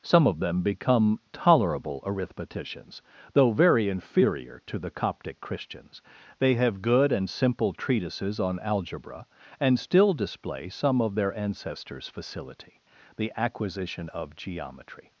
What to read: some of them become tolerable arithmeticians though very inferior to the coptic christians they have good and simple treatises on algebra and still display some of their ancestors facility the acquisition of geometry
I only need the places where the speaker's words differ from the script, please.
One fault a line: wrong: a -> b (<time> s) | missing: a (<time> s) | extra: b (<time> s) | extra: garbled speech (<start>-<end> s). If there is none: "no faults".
no faults